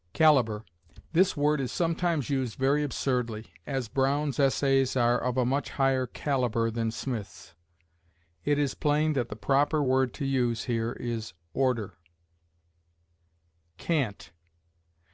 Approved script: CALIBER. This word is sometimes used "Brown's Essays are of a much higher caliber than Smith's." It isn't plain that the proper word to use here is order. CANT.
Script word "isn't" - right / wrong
wrong